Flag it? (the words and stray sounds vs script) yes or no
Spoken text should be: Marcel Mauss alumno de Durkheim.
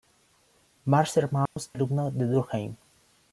yes